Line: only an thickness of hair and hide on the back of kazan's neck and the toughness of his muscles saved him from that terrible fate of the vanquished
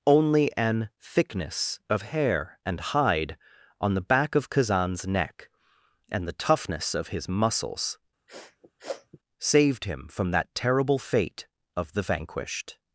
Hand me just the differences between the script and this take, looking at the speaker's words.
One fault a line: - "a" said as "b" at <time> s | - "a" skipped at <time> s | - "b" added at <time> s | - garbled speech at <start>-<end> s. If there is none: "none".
none